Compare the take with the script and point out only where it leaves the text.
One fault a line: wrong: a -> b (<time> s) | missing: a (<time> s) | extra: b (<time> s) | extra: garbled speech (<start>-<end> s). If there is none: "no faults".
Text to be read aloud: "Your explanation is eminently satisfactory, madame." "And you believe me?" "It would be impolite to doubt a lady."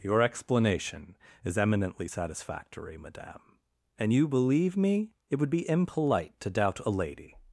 no faults